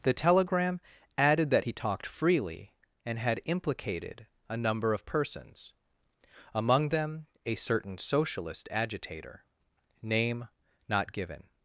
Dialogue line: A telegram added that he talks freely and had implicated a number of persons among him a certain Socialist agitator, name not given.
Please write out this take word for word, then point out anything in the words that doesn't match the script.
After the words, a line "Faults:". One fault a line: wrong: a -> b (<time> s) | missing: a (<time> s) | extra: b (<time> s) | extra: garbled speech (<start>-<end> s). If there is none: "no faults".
The telegram added that he talked freely and had implicated a number of persons among them a certain Socialist agitator, name not given.
Faults:
wrong: A -> The (0.0 s)
wrong: talks -> talked (1.7 s)
wrong: him -> them (6.9 s)